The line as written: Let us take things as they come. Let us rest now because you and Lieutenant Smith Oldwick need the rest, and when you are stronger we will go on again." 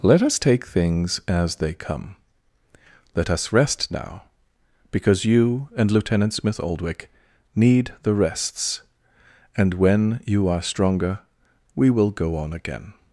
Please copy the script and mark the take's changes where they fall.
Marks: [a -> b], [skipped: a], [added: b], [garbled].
Let us take things as they come. Let us rest now because you and Lieutenant Smith Oldwick need the [rest, -> rests] and when you are stronger we will go on again."